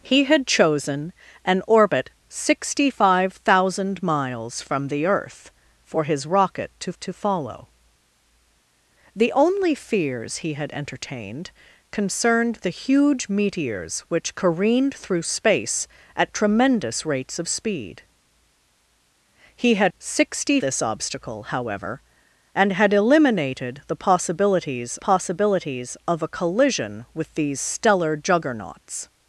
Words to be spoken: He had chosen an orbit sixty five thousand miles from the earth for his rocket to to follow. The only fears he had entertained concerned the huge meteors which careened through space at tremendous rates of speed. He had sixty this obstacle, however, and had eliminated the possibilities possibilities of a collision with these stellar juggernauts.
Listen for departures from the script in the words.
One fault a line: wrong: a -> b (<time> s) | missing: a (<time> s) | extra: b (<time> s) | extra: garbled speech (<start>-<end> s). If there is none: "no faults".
no faults